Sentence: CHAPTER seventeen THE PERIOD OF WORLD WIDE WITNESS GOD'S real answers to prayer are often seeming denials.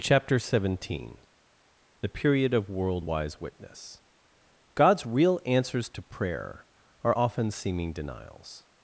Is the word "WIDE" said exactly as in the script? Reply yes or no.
no